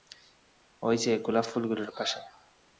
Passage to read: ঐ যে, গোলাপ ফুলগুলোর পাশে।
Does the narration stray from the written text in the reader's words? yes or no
no